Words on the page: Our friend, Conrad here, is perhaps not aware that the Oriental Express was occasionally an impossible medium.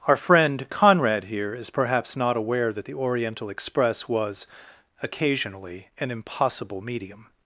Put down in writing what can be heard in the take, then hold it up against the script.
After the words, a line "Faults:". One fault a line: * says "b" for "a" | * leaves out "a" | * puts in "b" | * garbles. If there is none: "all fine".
Our friend, Conrad here, is perhaps not aware that the Oriental Express was occasionally an impossible medium.
Faults:
all fine